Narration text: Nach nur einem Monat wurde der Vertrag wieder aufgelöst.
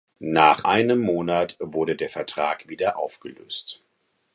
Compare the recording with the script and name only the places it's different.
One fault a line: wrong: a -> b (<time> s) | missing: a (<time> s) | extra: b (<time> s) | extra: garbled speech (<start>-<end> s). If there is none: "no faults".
missing: nur (0.7 s)